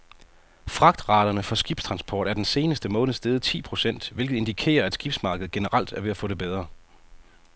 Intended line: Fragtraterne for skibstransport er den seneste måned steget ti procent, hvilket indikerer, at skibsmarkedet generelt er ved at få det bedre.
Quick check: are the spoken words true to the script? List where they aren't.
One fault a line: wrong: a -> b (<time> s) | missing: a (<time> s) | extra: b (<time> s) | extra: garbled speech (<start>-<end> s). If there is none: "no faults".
no faults